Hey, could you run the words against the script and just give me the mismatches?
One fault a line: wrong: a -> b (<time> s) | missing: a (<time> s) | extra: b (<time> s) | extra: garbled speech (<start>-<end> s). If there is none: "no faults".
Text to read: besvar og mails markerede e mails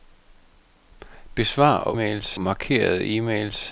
no faults